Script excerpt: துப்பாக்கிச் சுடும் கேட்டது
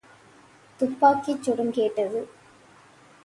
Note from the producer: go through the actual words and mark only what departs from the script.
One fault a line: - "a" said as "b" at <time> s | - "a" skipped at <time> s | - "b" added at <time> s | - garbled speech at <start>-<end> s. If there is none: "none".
none